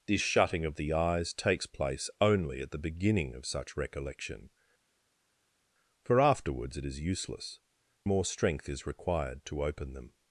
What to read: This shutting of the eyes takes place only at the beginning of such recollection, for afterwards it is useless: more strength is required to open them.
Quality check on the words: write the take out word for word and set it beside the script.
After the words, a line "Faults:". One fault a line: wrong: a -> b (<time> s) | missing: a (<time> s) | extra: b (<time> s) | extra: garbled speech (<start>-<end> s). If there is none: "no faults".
This shutting of the eyes takes place only at the beginning of such recollection, for afterwards it is useless: more strength is required to open them.
Faults:
no faults